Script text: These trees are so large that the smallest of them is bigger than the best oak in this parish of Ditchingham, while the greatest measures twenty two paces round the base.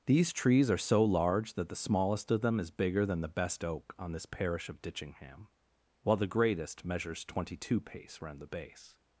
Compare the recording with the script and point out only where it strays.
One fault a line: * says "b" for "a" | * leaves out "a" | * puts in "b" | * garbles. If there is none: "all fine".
* says "on" for "in"
* says "pace" for "paces"